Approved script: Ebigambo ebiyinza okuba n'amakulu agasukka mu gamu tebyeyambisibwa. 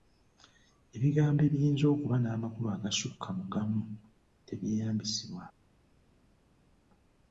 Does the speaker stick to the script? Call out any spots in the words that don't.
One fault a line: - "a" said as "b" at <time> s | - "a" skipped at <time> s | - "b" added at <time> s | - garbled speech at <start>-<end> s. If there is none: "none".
none